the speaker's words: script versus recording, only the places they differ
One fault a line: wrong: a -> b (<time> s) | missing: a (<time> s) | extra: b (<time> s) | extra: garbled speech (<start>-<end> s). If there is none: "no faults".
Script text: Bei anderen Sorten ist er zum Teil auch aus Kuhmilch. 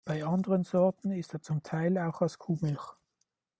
no faults